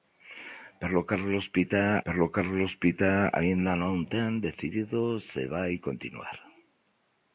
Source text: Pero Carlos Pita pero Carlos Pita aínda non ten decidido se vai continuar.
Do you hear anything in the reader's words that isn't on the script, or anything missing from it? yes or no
no